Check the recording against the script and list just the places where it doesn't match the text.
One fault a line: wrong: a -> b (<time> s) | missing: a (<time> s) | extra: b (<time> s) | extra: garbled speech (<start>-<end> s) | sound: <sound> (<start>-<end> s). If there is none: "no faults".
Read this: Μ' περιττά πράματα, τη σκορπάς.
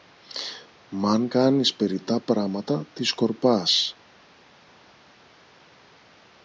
extra: αν κάνεις (1.1 s)